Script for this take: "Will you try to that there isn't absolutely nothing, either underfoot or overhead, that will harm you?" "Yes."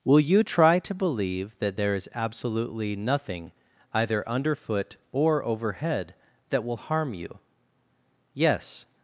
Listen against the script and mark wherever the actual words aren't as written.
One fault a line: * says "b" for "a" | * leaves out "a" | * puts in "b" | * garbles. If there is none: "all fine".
* puts in "believe"
* says "is" for "isn't"